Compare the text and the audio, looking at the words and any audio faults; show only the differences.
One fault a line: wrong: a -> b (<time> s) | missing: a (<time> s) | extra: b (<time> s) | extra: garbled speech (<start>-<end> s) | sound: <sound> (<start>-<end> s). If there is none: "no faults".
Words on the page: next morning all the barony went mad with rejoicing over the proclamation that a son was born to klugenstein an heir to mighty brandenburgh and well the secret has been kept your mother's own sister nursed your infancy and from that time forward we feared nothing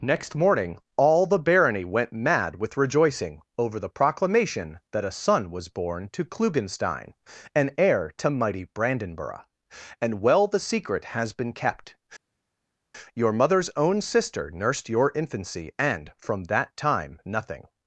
missing: forward we feared (17.2 s)